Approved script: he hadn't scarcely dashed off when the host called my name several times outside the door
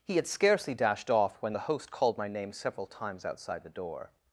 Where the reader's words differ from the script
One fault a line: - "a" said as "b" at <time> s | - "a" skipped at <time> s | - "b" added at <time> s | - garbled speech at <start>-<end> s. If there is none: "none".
- "hadn't" said as "had" at 0.1 s